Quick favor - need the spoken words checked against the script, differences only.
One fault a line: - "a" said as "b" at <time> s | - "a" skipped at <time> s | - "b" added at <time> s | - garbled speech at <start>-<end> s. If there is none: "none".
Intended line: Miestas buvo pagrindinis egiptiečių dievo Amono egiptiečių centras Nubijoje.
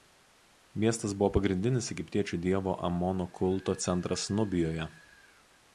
- "egiptiečių" said as "kulto" at 3.4 s